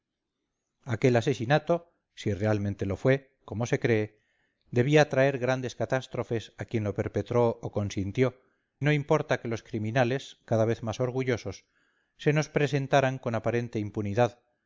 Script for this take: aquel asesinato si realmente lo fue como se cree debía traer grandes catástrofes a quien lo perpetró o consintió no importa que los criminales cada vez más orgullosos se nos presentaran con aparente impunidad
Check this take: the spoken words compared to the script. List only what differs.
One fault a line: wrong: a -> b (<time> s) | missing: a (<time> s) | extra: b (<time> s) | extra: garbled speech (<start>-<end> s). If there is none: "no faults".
no faults